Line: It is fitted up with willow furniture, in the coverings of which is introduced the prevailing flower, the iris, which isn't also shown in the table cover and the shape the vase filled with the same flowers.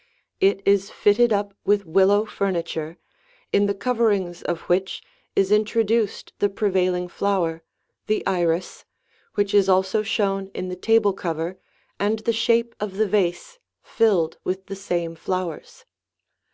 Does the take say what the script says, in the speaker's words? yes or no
no